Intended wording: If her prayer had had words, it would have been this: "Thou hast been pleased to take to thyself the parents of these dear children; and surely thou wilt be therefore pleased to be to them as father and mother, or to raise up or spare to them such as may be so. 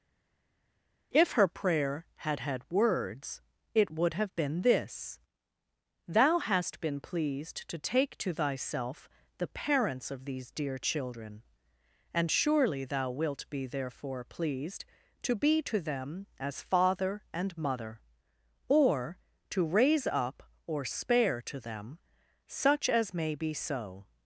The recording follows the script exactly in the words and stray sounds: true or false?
true